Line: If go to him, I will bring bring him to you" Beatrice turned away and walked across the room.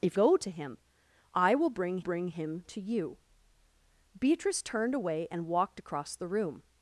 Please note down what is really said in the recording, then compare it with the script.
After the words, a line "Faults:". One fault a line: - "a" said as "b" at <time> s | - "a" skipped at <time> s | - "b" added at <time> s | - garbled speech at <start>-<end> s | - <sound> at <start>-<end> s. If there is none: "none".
If go to him, I will bring bring him to you" Beatrice turned away and walked across the room.
Faults:
none